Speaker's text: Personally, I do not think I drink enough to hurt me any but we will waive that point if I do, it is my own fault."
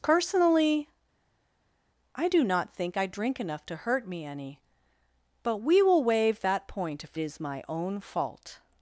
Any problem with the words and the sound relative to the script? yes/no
yes